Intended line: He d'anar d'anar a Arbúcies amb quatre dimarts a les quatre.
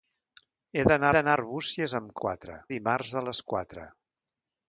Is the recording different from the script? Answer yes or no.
no